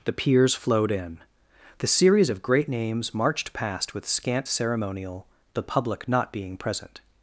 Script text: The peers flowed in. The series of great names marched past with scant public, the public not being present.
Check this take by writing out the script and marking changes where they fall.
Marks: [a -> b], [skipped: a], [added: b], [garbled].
The peers flowed in. The series of great names marched past with scant [public, -> ceremonial] the public not being present.